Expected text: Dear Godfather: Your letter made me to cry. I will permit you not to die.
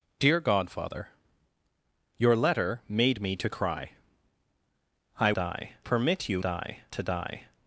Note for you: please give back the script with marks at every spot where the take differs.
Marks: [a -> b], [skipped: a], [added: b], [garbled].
Dear Godfather: Your letter made me to cry. I [will -> die] permit you [not -> die] to die.